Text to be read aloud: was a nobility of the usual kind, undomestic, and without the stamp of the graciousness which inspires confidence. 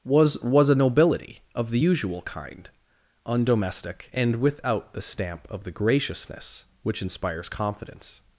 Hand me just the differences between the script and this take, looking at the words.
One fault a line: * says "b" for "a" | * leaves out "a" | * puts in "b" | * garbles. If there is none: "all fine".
* puts in "was"